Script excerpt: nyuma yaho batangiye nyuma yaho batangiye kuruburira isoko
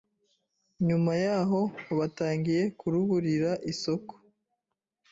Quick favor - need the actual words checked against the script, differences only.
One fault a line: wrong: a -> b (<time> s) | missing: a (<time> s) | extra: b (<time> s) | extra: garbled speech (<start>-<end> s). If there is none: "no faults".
missing: nyuma yaho batangiye (2.6 s)